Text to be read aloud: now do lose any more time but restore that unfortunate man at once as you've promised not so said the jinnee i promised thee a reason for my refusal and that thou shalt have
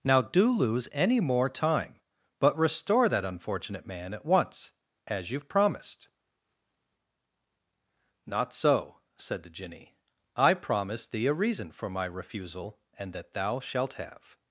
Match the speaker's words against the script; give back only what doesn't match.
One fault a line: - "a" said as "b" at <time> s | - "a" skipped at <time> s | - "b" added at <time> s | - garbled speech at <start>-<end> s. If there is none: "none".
none